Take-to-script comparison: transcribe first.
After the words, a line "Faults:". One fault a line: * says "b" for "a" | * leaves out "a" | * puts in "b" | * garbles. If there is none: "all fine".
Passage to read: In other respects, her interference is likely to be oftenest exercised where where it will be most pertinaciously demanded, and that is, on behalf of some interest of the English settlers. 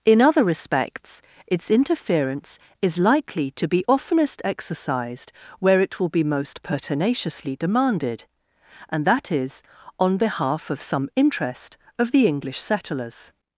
In other respects, its interference is likely to be oftenest exercised where it will be most pertinaciously demanded, and that is, on behalf of some interest of the English settlers.
Faults:
* says "its" for "her"
* leaves out "where"